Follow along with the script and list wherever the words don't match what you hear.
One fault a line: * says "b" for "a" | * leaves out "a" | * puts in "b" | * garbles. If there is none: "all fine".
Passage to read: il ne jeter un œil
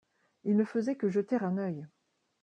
* puts in "faisait que"